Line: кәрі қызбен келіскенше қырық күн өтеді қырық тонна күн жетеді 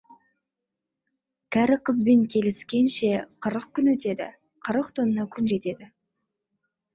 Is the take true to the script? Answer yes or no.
yes